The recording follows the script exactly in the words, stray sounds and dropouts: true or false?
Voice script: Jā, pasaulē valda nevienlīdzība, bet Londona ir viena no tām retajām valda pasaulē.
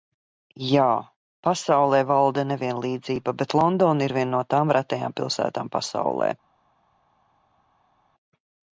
false